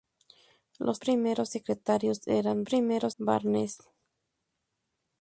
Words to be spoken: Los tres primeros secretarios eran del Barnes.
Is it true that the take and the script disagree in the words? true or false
true